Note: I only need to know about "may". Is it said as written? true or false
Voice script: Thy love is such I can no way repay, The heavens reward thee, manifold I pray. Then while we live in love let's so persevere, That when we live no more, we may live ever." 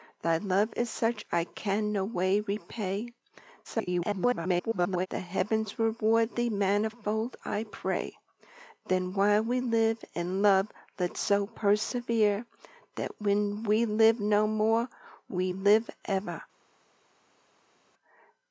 false